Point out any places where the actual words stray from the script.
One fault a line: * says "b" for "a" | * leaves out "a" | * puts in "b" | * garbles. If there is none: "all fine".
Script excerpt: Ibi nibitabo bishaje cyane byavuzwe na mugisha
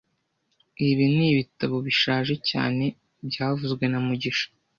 all fine